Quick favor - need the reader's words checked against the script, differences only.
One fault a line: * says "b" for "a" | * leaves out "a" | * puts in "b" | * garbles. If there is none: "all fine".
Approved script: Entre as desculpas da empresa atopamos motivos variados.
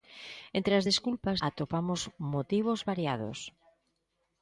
* leaves out "da empresa"